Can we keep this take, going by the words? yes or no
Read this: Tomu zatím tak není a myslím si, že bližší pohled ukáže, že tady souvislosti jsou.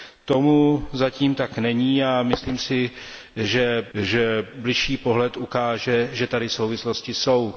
no